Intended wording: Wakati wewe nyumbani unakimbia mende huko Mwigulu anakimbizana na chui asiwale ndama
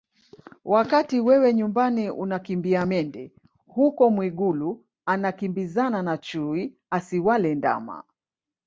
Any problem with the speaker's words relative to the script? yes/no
no